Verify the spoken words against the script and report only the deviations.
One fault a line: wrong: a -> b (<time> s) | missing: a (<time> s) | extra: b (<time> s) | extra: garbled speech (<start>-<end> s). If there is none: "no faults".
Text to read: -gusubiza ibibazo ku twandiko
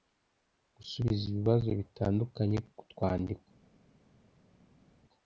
extra: bitandukanye (1.8 s)